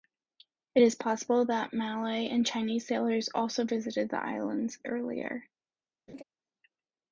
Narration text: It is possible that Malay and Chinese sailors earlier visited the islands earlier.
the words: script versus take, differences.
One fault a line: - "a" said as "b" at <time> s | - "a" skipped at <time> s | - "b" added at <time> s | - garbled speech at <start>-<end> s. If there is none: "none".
- "earlier" said as "also" at 3.3 s